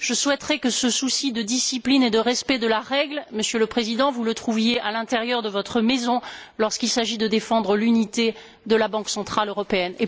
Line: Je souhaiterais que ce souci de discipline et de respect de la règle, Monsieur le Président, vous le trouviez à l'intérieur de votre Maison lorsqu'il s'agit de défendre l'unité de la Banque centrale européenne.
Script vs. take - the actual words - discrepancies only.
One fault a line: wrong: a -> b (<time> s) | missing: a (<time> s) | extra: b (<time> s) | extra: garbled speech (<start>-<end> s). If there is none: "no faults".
no faults